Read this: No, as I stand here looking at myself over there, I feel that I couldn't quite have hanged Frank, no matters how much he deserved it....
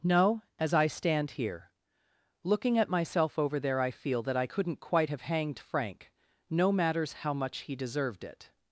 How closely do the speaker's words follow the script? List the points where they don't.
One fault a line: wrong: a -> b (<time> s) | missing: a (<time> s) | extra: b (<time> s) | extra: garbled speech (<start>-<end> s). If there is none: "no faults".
no faults